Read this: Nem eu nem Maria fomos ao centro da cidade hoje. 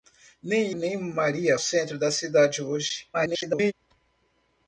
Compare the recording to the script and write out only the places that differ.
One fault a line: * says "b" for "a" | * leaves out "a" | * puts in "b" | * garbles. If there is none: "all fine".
* leaves out "eu"
* leaves out "fomos ao"
* garbles